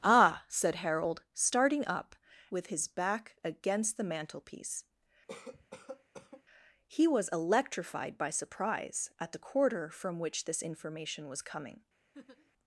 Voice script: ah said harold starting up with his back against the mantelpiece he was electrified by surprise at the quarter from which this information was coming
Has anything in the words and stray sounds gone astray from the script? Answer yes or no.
yes